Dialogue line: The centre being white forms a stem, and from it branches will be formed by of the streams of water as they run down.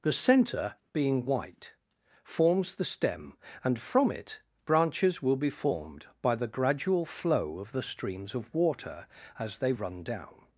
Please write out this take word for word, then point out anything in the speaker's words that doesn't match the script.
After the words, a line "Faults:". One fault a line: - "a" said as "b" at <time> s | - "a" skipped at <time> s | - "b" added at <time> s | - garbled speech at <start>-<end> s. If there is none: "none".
The centre being white forms the stem, and from it branches will be formed by the gradual flow of the streams of water as they run down.
Faults:
- "a" said as "the" at 2.8 s
- "the gradual flow" added at 6.3 s